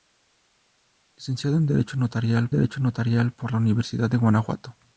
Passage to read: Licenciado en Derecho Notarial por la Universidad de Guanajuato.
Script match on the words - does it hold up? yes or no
no